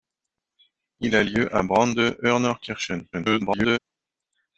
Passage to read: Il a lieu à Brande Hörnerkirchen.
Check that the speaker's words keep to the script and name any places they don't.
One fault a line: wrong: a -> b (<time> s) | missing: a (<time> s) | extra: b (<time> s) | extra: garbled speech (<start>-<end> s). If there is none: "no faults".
extra: garbled speech (3.1-3.8 s)